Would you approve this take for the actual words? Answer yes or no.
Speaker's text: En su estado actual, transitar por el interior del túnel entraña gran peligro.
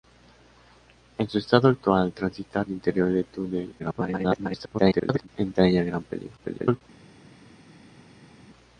no